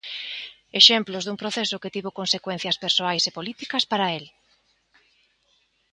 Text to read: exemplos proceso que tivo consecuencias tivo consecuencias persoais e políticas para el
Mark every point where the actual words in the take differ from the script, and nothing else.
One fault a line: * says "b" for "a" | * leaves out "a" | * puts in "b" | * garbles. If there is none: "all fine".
* puts in "dun"
* leaves out "tivo consecuencias"